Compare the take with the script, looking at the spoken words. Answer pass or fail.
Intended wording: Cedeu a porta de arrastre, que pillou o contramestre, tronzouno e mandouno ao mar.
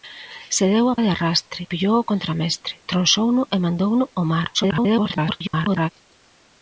fail